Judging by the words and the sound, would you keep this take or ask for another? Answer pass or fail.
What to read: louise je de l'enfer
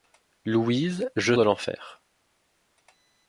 pass